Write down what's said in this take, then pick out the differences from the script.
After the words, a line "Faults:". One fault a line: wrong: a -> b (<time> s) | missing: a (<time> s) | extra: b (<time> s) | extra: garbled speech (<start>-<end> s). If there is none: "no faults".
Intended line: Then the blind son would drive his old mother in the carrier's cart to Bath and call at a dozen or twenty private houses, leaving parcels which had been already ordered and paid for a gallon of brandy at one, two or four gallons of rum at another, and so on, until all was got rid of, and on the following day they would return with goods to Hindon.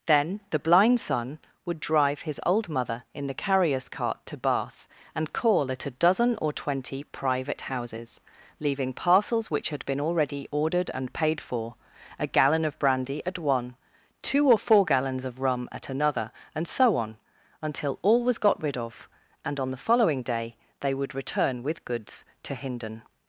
Then the blind son would drive his old mother in the carrier's cart to Bath and call at a dozen or twenty private houses, leaving parcels which had been already ordered and paid for a gallon of brandy at one, two or four gallons of rum at another, and so on, until all was got rid of, and on the following day they would return with goods to Hindon.
Faults:
no faults